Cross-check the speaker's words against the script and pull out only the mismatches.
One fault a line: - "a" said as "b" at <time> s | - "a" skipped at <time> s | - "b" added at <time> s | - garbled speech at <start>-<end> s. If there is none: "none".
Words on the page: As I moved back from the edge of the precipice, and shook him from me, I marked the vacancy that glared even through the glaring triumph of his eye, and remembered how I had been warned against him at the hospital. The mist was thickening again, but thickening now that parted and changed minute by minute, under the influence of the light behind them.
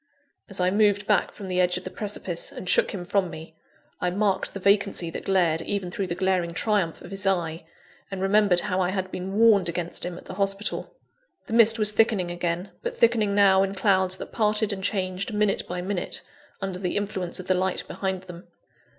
- "in clouds" added at 13.6 s